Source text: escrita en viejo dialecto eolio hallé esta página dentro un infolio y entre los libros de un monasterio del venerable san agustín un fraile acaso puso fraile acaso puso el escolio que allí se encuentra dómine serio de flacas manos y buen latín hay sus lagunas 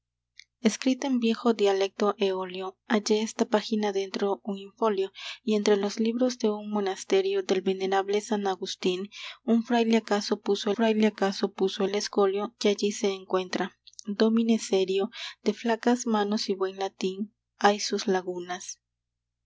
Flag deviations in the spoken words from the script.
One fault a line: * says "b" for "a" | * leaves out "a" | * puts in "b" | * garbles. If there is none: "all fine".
all fine